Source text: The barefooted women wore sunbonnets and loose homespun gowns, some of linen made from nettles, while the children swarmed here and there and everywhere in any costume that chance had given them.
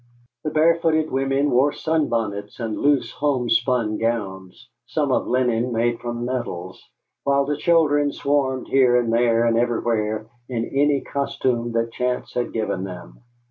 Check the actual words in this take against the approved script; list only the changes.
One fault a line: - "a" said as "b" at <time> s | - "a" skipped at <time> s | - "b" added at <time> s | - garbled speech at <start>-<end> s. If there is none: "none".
none